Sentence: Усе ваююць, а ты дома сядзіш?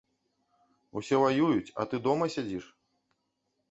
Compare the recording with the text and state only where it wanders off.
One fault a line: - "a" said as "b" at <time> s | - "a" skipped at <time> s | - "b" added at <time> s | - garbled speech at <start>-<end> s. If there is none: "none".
none